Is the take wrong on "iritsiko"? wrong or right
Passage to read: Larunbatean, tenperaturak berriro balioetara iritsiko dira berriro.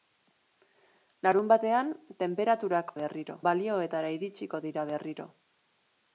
right